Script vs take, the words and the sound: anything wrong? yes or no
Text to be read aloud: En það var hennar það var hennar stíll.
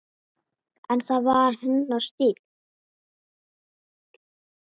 yes